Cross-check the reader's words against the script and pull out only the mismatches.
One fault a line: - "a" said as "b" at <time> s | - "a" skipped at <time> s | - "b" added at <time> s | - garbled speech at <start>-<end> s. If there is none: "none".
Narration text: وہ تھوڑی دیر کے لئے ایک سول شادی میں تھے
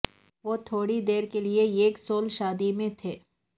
none